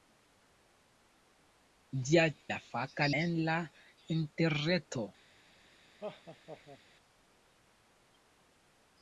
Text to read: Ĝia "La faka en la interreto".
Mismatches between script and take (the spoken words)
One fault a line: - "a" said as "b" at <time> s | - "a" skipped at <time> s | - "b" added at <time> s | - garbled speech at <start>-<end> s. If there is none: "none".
none